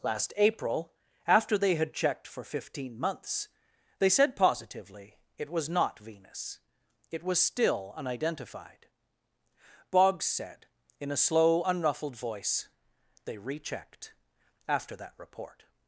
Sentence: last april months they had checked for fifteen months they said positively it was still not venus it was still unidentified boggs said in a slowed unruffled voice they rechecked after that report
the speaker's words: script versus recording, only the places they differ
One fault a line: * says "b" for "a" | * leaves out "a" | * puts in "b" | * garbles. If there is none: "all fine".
* says "after" for "months"
* leaves out "still"
* says "slow" for "slowed"